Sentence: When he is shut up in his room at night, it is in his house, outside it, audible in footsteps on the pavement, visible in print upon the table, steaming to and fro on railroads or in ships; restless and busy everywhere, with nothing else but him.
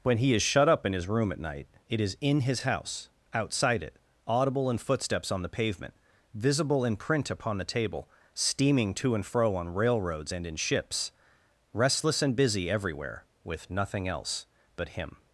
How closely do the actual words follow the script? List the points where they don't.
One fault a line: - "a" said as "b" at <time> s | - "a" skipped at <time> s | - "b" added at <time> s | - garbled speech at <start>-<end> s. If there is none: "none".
- "or" said as "and" at 10.3 s